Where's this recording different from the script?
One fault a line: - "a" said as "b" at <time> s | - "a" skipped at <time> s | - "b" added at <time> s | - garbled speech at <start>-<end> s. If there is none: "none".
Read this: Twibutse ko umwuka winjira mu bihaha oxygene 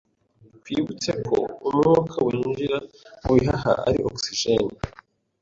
- "ari" added at 3.9 s